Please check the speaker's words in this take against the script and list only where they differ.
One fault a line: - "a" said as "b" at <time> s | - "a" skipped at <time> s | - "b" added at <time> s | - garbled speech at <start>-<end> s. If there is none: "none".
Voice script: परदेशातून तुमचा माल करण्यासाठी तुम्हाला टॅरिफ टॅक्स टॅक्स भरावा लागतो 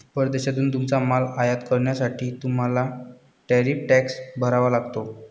- "आयात" added at 1.4 s
- "टॅक्स" skipped at 4.2 s